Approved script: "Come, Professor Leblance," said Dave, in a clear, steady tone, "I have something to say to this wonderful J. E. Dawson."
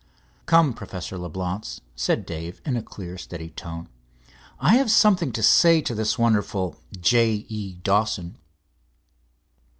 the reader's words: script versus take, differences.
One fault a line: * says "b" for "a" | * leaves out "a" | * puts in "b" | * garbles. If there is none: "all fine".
all fine